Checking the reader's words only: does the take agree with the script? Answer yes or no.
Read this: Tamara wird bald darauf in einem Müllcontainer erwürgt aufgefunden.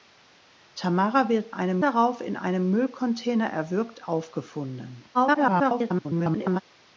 no